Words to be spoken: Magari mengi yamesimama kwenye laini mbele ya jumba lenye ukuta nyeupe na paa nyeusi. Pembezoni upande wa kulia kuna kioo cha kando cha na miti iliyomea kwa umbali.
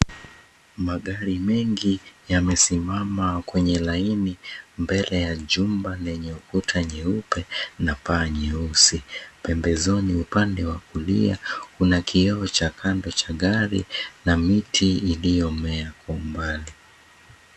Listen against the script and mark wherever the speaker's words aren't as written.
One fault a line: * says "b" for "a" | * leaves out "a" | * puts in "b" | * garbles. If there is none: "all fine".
* puts in "gari"